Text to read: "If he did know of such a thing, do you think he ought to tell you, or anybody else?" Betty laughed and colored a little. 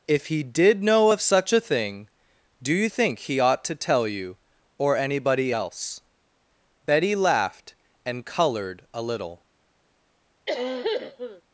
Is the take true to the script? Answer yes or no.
yes